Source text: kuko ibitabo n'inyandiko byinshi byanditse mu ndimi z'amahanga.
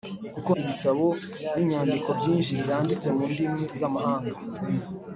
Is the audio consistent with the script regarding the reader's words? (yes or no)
yes